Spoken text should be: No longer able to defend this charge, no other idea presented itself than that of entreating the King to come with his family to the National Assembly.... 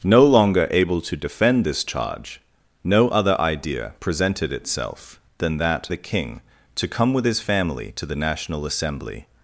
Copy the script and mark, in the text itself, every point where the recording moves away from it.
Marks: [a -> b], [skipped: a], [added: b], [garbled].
No longer able to defend this charge, no other idea presented itself than that [skipped: of entreating] the King to come with his family to the National Assembly....